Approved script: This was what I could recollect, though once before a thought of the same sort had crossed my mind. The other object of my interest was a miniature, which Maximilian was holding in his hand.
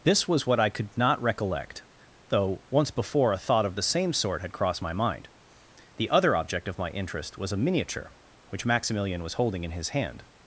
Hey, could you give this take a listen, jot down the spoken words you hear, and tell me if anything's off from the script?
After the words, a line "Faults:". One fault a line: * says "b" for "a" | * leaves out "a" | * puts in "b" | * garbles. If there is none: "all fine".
This was what I could not recollect, though once before a thought of the same sort had crossed my mind. The other object of my interest was a miniature, which Maximilian was holding in his hand.
Faults:
* puts in "not"